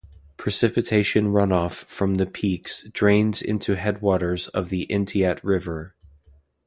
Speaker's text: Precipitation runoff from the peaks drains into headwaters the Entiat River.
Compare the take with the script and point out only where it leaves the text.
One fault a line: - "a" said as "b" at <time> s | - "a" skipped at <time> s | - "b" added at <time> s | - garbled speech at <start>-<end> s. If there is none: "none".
- "of" added at 4.5 s